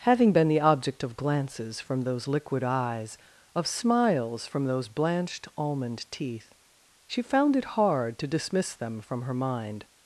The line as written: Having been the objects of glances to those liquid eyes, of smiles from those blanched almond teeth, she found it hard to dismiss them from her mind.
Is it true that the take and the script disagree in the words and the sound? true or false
true